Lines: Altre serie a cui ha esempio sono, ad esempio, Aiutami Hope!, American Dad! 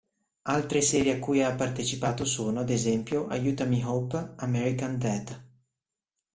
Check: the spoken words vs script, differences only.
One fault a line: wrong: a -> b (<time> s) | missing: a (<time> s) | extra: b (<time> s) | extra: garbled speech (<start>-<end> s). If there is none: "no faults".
wrong: esempio -> partecipato (1.5 s)